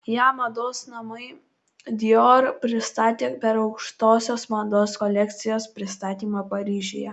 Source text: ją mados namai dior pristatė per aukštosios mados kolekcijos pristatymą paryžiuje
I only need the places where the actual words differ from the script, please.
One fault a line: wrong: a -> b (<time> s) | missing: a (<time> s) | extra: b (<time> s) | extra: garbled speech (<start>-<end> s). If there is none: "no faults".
no faults